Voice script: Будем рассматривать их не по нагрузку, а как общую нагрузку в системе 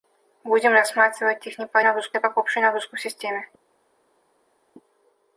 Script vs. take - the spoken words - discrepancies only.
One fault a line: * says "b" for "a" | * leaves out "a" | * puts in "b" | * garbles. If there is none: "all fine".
all fine